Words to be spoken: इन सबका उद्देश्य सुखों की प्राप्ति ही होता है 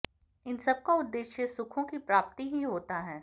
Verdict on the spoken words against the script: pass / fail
pass